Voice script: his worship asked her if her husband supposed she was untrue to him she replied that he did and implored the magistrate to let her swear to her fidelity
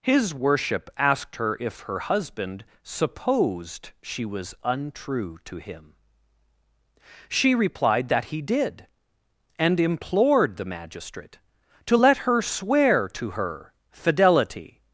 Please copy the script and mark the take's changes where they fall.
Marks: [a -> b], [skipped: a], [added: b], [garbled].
his worship asked her if her husband supposed she was untrue to him she replied that he did and implored the magistrate to let her swear to her fidelity